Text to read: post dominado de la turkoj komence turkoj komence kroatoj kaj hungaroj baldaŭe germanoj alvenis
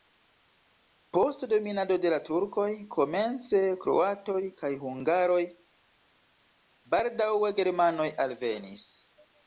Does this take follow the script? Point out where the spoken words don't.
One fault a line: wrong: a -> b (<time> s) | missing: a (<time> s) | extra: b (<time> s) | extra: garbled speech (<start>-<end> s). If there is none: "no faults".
missing: turkoj komence (3.6 s)